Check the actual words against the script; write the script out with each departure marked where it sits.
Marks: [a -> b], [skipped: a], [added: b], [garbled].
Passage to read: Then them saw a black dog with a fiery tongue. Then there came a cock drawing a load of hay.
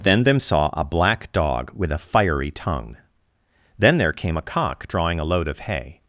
Then them saw a black dog with a fiery tongue. Then there came a cock drawing a load of hay.